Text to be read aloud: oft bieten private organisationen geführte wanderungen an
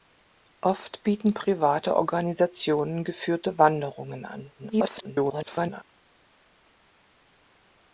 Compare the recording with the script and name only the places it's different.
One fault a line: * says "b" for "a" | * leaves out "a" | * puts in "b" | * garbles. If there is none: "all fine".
* garbles